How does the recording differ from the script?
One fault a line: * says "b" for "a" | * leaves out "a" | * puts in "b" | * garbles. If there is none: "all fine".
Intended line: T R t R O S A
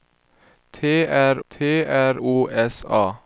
all fine